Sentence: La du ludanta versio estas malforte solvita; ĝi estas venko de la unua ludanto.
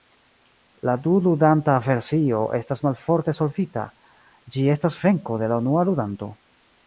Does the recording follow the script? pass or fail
pass